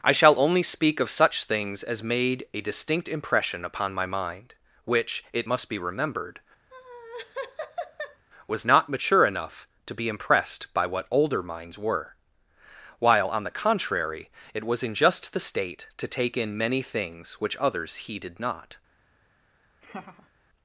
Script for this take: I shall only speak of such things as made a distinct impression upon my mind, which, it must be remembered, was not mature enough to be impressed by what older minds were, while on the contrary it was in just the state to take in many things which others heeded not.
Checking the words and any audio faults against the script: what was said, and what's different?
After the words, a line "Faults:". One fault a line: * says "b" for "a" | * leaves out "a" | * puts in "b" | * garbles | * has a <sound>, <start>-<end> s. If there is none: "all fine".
I shall only speak of such things as made a distinct impression upon my mind, which, it must be remembered, was not mature enough to be impressed by what older minds were, while on the contrary it was in just the state to take in many things which others heeded not.
Faults:
* has a laugh, 6.7-8.2 s
* has a laugh, 19.8-20.3 s